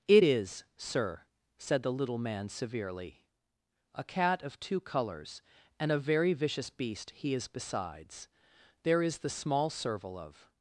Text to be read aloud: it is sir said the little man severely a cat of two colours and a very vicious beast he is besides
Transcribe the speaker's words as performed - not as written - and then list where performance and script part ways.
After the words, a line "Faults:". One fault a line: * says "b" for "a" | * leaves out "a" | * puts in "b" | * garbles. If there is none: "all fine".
it is sir said the little man severely a cat of two colours and a very vicious beast he is besides there is the small serval of
Faults:
* puts in "there is the small serval of"